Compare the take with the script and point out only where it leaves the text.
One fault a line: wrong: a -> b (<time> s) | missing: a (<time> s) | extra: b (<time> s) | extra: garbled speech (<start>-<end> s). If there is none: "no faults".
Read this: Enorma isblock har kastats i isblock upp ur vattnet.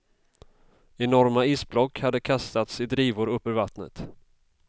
wrong: har -> hade (2.0 s)
wrong: isblock -> drivor (2.8 s)